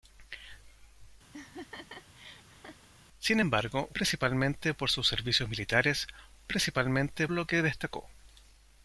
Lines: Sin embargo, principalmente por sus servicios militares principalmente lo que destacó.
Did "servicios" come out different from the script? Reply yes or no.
no